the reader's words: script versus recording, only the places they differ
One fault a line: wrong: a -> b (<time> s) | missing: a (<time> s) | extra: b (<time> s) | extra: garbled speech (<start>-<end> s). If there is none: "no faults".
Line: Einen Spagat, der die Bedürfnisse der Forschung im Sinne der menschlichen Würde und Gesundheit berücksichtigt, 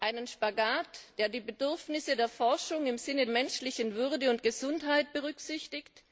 missing: der (3.3 s)